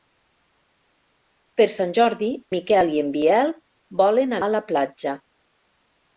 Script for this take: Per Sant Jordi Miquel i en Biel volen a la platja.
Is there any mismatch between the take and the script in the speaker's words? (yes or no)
no